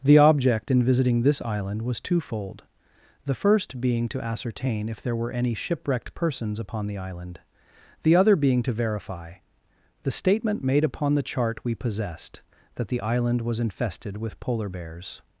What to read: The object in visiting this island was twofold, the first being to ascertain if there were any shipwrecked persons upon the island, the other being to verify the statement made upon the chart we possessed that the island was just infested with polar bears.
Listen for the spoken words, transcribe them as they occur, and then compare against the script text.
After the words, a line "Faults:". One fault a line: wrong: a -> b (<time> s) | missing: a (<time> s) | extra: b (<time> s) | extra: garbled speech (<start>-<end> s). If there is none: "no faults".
The object in visiting this island was twofold, the first being to ascertain if there were any shipwrecked persons upon the island, the other being to verify the statement made upon the chart we possessed that the island was infested with polar bears.
Faults:
missing: just (13.6 s)